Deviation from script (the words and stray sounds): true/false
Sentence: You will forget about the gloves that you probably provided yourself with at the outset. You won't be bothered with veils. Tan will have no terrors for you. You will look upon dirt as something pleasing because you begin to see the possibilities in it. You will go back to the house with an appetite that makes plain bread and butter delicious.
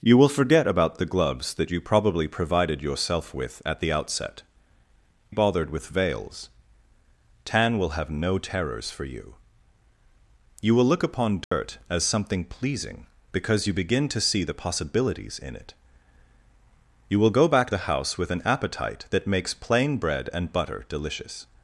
true